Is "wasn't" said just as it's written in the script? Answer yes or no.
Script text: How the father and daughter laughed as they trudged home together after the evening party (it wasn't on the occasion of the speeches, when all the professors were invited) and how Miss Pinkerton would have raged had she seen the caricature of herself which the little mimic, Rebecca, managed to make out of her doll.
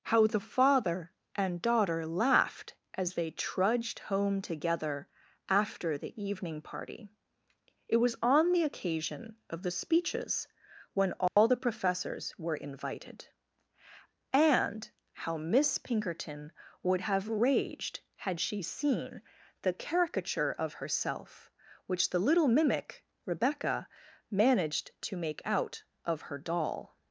no